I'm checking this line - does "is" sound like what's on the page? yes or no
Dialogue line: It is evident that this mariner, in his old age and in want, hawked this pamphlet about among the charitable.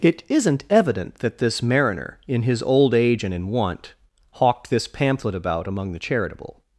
no